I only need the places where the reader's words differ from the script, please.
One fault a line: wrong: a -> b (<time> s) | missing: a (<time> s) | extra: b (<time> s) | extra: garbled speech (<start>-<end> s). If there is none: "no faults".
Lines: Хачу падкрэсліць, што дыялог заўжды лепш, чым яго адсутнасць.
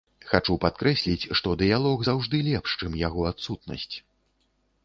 no faults